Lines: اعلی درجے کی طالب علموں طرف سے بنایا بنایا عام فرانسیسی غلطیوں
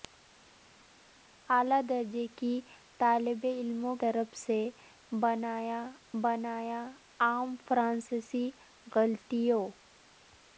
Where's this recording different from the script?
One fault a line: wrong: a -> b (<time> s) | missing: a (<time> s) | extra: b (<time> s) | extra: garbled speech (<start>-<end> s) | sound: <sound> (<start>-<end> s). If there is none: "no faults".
no faults